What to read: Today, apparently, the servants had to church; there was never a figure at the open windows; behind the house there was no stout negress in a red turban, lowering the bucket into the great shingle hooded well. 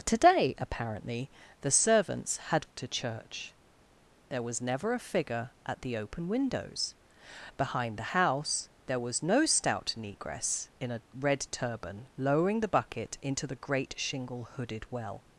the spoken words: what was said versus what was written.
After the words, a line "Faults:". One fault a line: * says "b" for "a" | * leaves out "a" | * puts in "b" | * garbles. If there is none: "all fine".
Today, apparently, the servants had to church; there was never a figure at the open windows; behind the house there was no stout negress in a red turban, lowering the bucket into the great shingle hooded well.
Faults:
all fine